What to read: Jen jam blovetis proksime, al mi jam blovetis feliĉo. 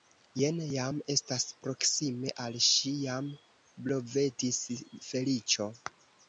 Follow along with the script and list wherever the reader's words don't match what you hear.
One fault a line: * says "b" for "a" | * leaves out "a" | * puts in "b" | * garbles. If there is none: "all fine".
* says "estas" for "blovetis"
* says "ŝi" for "mi"